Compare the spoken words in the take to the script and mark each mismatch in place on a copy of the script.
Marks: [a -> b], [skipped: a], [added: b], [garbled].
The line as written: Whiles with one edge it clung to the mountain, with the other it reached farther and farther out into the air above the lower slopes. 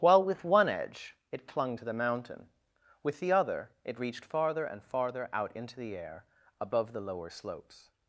[Whiles -> While] with one edge it clung to the mountain, with the other it reached farther and farther out into the air above the lower slopes.